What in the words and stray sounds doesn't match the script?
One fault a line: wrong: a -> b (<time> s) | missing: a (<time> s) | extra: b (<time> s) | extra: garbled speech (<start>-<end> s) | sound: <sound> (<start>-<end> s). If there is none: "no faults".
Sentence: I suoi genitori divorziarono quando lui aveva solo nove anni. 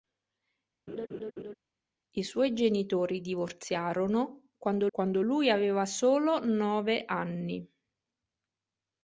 sound: laugh (0.9-1.5 s)
extra: quando (4.9 s)